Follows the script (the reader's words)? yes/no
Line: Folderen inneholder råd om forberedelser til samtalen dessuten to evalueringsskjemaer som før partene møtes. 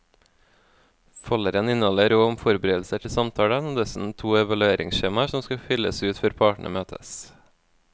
no